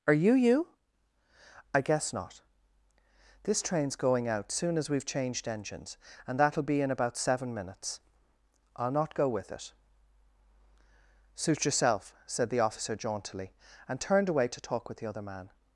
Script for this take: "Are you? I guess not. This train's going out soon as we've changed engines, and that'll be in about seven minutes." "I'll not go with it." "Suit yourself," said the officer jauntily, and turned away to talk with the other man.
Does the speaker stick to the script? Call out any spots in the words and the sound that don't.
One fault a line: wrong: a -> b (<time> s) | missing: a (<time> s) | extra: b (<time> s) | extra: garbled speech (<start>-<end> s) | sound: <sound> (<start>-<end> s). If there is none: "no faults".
extra: you (0.3 s)